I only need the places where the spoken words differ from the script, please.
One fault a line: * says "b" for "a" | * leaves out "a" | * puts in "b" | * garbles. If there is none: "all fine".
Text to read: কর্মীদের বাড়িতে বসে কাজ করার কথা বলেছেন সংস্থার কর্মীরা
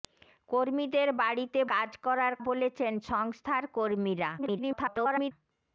* leaves out "বসে"
* leaves out "কথা"
* garbles